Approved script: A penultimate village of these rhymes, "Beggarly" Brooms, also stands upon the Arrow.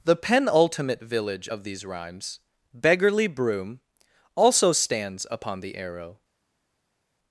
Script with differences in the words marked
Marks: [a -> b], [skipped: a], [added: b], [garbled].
[A -> The] penultimate village of these rhymes, "Beggarly" [Brooms, -> Broom] also stands upon the Arrow.